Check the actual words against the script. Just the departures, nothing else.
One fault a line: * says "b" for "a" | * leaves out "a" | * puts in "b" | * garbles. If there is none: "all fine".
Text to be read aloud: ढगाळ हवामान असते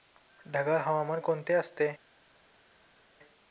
* puts in "कोणते"